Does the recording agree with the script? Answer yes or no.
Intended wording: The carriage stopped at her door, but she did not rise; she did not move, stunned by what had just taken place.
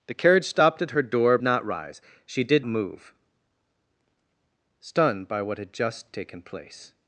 no